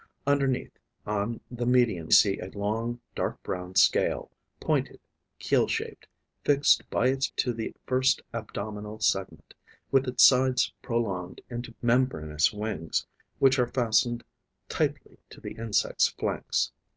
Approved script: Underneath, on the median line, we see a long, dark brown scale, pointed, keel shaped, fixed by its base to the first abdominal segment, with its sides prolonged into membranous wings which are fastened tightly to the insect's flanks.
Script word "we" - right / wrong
wrong